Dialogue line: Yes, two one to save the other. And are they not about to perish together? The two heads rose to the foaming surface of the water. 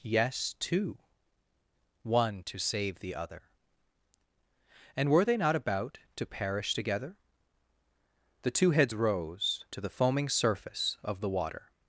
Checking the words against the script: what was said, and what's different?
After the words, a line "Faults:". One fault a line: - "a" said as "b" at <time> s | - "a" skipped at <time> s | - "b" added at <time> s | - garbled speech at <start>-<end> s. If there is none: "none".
Yes, two one to save the other. And were they not about to perish together? The two heads rose to the foaming surface of the water.
Faults:
- "are" said as "were" at 5.1 s